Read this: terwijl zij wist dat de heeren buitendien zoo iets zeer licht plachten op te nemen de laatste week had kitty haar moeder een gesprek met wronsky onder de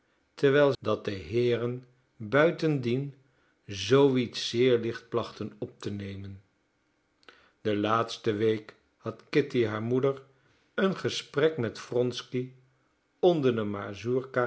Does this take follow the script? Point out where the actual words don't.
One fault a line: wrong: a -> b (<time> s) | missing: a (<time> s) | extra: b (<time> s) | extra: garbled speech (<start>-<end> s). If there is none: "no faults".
missing: zij wist (0.7 s)